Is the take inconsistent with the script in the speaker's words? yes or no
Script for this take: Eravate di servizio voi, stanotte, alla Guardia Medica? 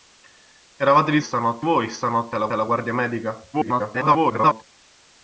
yes